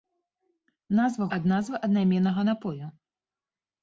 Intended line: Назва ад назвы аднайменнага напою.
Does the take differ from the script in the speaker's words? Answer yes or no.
no